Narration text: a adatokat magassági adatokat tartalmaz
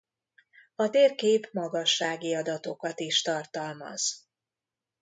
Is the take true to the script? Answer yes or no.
no